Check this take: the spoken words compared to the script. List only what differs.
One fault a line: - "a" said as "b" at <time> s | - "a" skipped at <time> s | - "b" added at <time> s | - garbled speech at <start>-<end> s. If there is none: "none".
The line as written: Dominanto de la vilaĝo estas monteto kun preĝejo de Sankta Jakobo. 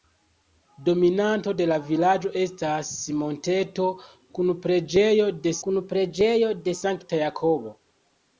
- "kun preĝejo de" added at 5.7 s